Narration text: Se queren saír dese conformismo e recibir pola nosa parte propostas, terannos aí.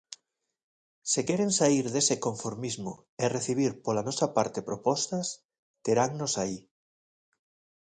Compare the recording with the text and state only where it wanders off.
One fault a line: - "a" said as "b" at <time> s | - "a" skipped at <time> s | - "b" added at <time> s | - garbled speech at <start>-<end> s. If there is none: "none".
none